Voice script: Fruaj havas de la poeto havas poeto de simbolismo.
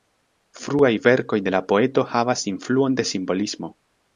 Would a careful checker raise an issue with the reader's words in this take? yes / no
yes